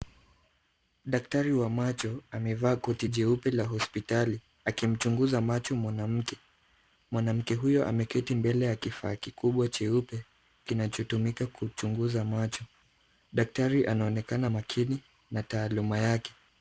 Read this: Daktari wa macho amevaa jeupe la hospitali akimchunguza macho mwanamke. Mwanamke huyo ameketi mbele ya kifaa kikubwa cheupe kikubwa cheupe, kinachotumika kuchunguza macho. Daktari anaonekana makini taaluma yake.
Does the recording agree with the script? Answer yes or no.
no